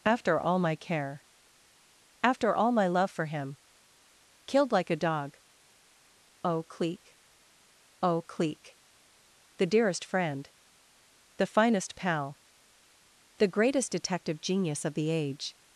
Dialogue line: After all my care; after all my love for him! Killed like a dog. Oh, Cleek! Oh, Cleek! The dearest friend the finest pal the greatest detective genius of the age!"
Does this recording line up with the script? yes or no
yes